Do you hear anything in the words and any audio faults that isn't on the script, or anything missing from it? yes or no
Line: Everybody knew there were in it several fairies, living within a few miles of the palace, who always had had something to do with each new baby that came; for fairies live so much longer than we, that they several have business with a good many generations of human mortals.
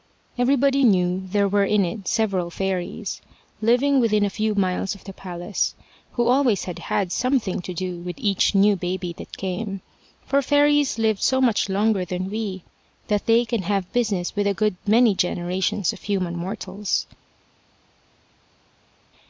yes